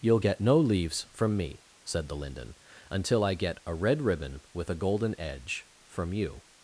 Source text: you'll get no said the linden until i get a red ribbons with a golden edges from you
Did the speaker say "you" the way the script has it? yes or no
yes